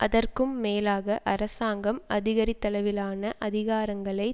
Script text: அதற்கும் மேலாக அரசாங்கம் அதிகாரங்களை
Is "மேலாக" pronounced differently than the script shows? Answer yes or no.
no